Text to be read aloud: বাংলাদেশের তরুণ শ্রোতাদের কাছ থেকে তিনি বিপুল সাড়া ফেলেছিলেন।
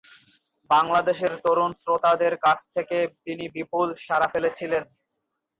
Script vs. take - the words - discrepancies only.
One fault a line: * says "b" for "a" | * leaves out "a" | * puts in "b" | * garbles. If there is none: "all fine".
all fine